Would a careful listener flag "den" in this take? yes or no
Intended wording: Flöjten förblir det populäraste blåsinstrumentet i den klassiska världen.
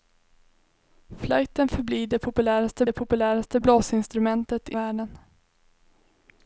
yes